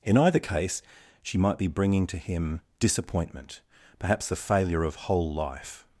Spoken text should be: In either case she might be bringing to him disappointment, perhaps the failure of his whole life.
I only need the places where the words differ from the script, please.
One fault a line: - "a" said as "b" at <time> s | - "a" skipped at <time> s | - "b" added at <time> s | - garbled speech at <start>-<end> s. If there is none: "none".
- "his" skipped at 5.0 s